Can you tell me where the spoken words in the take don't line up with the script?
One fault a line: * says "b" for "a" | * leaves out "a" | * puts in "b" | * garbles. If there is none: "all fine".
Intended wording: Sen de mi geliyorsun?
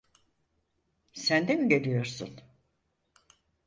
all fine